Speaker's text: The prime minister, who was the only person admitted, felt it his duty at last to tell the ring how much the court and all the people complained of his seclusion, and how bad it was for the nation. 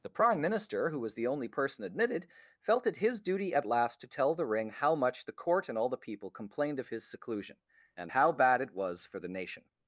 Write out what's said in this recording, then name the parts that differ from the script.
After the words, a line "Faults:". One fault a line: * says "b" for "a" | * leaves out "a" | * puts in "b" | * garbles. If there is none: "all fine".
The prime minister, who was the only person admitted, felt it his duty at last to tell the ring how much the court and all the people complained of his seclusion, and how bad it was for the nation.
Faults:
all fine